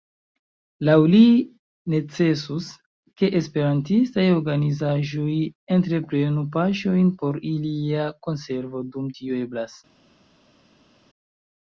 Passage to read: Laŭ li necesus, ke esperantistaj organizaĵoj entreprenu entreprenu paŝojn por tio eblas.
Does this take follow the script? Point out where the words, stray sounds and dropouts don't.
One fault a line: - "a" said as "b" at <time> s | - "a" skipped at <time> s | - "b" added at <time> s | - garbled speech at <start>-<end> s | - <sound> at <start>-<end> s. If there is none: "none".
- "entreprenu" skipped at 6.5 s
- "ilia konservo dum" added at 7.5 s